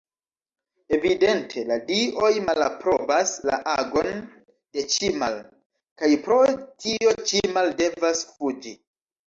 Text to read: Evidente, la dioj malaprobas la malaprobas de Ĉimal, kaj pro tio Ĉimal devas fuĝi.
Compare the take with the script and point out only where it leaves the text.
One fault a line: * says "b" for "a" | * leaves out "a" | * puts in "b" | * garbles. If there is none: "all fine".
* says "agon" for "malaprobas"